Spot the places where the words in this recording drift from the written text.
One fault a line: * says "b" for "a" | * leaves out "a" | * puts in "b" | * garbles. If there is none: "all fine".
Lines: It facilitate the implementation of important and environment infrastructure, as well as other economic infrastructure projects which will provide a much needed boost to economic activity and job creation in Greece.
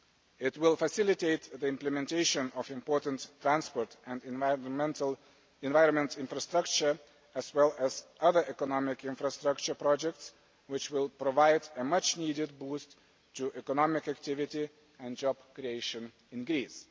* puts in "will"
* puts in "transport"